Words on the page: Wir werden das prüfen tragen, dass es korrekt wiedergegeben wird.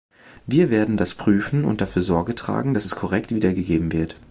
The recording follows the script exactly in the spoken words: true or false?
false